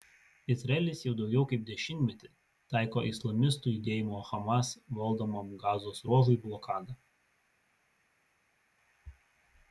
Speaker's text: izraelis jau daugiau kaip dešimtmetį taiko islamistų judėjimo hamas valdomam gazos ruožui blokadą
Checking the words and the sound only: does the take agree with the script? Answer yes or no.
yes